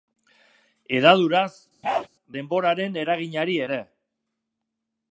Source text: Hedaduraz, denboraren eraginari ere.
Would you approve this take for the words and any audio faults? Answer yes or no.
no